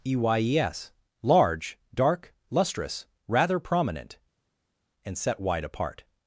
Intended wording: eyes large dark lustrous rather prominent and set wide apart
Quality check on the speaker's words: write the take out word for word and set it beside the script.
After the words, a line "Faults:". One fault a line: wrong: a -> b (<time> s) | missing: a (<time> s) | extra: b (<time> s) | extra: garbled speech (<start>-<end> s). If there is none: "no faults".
eyes large dark lustrous rather prominent and set wide apart
Faults:
no faults